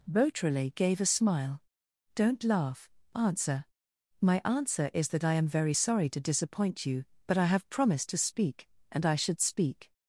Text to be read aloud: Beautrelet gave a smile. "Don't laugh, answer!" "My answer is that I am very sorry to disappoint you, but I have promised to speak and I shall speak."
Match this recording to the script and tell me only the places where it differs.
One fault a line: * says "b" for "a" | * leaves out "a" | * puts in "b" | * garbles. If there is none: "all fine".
* says "should" for "shall"